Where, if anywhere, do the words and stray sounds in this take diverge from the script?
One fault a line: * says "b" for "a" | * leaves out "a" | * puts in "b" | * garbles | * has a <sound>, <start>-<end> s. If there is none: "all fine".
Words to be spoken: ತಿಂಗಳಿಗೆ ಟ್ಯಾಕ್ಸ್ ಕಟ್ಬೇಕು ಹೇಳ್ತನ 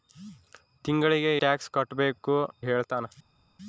all fine